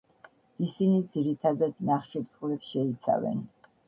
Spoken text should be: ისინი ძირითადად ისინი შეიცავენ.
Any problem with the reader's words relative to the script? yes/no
yes